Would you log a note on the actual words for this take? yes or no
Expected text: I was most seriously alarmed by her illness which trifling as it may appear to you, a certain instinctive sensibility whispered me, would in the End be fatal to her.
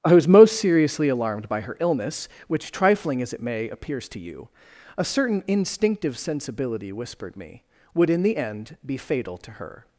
yes